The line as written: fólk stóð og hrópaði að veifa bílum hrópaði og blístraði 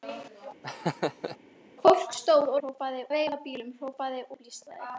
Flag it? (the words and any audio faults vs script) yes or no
yes